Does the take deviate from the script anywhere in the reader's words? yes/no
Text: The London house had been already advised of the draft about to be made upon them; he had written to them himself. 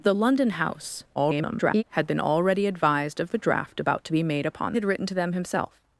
yes